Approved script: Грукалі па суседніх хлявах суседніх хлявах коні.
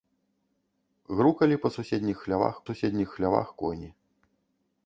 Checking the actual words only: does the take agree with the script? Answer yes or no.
yes